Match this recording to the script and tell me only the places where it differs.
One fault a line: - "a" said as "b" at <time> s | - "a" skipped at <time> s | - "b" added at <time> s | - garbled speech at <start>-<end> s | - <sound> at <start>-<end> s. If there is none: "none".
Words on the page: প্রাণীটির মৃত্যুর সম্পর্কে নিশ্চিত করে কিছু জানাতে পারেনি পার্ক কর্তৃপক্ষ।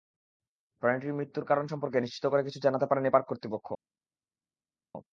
- "কারণ" added at 1.4 s